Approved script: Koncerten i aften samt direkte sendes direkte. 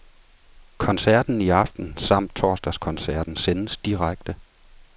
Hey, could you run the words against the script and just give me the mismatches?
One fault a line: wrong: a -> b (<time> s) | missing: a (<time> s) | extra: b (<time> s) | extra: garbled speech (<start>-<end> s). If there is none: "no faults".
wrong: direkte -> torsdagskoncerten (2.4 s)